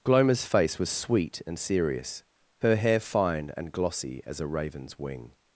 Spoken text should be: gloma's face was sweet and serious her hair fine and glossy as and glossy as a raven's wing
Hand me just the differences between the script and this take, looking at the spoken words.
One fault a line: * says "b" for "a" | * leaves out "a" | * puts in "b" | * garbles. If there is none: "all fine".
* leaves out "and glossy as"